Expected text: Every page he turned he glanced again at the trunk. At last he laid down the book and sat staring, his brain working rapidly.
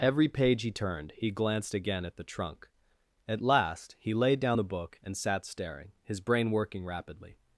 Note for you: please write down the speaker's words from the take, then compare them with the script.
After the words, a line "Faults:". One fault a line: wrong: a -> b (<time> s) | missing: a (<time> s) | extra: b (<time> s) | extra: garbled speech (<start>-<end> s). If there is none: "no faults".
Every page he turned he glanced again at the trunk. At last he laid down the book and sat staring, his brain working rapidly.
Faults:
no faults